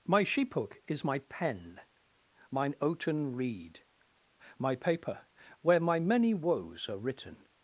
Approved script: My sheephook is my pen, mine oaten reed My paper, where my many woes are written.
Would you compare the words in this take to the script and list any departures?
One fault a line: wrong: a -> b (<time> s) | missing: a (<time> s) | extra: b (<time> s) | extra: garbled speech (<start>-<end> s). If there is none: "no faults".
no faults